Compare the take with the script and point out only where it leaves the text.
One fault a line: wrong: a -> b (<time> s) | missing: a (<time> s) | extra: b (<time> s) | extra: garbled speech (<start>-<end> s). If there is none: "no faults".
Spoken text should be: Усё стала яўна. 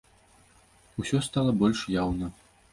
extra: больш (1.6 s)